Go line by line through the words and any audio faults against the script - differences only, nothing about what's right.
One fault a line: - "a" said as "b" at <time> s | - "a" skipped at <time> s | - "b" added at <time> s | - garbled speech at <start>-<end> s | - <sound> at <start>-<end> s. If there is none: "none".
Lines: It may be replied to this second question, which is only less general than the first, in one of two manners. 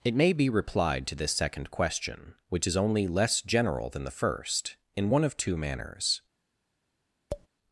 - tap at 7.3-7.5 s